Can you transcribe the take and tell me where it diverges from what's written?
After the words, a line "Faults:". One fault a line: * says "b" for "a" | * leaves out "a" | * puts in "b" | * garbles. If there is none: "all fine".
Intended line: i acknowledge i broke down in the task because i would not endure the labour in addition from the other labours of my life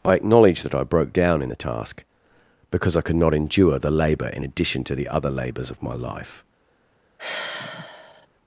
i acknowledge that i broke down in the task because i could not endure the labour in addition to the other labours of my life
Faults:
* puts in "that"
* says "could" for "would"
* says "to" for "from"